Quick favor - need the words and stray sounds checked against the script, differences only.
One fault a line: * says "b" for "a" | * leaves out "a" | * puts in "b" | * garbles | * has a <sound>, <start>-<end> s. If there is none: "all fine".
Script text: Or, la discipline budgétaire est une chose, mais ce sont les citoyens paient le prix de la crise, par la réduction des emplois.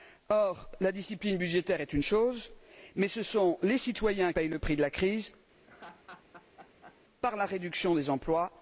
* has a laugh, 5.6-7.0 s